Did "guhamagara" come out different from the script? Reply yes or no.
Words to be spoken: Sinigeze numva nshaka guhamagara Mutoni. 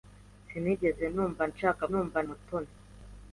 yes